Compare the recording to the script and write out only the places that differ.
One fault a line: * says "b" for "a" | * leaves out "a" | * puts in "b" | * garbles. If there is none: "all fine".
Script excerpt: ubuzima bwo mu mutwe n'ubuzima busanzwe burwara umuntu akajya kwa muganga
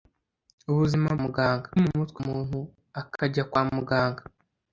* says "muganga" for "bwo"
* leaves out "n'ubuzima busanzwe burwara"